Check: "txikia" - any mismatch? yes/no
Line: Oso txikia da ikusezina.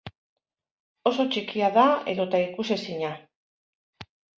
no